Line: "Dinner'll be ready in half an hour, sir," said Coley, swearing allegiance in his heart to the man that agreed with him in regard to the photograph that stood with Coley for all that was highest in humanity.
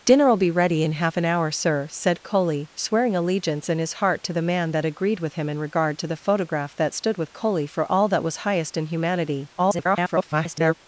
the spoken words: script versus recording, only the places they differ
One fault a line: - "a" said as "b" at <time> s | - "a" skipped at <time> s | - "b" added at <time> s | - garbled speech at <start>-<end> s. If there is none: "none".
- garbled speech at 9.6-10.7 s